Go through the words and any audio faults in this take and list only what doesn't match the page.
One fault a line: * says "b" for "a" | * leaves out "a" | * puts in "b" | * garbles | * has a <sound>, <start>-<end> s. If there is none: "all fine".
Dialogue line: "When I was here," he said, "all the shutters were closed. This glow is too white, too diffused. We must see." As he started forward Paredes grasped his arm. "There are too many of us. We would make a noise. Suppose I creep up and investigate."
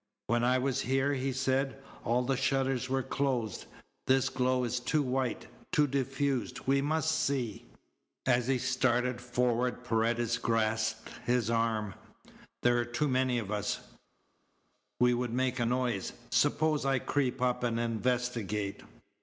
all fine